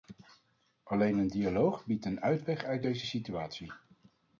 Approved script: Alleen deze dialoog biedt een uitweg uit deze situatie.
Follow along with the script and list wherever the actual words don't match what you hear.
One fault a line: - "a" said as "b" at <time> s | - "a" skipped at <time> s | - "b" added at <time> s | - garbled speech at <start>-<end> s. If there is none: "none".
- "deze" said as "een" at 1.2 s